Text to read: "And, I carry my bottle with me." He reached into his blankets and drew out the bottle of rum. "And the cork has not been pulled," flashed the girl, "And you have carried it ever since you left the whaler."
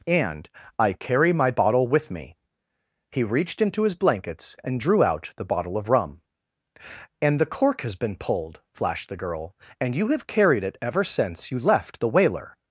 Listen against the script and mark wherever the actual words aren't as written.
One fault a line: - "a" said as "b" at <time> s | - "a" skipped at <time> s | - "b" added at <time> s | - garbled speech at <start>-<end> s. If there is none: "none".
- "not" skipped at 8.0 s